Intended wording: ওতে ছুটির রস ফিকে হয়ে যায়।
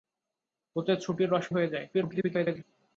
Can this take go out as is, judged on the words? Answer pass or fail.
fail